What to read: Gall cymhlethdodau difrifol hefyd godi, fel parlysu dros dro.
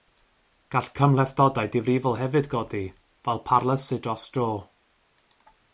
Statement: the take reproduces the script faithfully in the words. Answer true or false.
true